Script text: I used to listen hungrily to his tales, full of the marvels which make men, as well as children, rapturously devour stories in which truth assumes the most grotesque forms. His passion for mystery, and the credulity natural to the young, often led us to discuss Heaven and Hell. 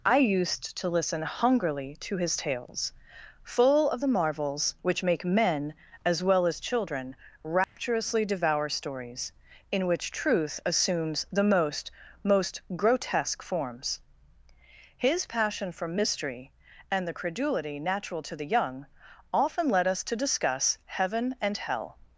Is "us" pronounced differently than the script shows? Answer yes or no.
no